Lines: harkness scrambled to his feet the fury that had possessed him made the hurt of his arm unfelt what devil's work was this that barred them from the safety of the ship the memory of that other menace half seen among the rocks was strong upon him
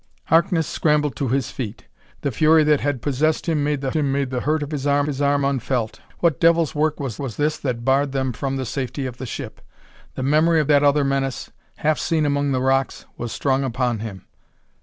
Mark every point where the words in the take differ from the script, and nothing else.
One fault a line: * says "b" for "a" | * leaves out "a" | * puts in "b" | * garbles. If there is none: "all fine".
* puts in "him made the"
* puts in "his arm"
* puts in "was"